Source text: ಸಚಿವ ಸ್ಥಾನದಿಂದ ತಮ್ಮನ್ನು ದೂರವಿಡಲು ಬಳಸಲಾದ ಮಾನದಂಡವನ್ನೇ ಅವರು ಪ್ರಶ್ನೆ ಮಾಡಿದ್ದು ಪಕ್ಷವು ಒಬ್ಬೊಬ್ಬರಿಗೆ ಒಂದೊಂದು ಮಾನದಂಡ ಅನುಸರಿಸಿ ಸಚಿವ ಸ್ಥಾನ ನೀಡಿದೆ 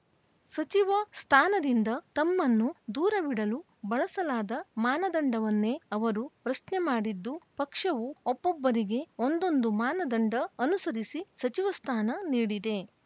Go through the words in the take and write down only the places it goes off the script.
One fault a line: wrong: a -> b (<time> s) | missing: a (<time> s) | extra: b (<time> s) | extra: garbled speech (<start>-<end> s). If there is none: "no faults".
no faults